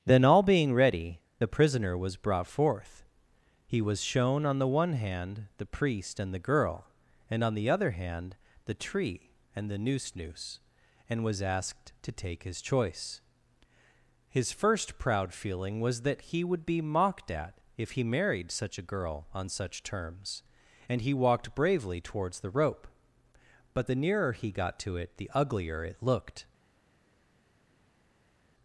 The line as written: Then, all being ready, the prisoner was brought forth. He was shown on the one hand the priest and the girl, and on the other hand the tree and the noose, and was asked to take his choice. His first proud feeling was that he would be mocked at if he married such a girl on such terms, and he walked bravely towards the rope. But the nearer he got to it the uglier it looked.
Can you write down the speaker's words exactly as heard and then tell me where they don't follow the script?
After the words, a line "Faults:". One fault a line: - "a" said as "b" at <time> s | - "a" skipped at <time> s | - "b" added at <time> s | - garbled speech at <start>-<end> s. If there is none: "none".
Then, all being ready, the prisoner was brought forth. He was shown on the one hand the priest and the girl, and on the other hand the tree and the noose noose, and was asked to take his choice. His first proud feeling was that he would be mocked at if he married such a girl on such terms, and he walked bravely towards the rope. But the nearer he got to it the uglier it looked.
Faults:
- "noose" added at 10.2 s